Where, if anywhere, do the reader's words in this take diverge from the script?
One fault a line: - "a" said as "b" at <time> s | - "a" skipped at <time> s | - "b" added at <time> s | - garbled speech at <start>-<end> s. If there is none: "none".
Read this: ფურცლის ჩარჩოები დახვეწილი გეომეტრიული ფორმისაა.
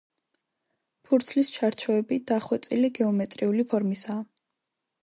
none